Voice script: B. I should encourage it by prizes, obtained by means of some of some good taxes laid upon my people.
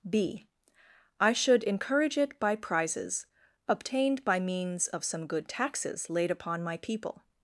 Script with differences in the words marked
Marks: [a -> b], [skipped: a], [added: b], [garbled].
B. I should encourage it by prizes, obtained by means of some [skipped: of some] good taxes laid upon my people.